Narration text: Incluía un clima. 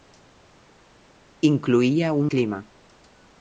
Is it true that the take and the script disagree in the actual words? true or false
false